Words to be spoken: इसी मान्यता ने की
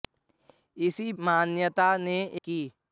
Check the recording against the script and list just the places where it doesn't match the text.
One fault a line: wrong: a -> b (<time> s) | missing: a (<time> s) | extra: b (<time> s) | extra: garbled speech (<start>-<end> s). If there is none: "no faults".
no faults